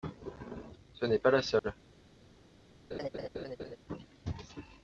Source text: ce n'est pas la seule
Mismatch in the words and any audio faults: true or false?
true